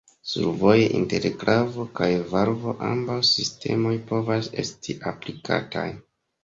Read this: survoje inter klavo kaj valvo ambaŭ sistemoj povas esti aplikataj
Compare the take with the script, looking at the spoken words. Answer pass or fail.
pass